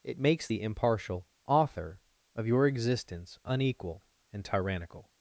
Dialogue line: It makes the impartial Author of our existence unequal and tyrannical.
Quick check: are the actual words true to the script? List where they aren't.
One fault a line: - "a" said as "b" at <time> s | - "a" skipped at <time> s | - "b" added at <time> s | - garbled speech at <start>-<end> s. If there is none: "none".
- "our" said as "your" at 2.5 s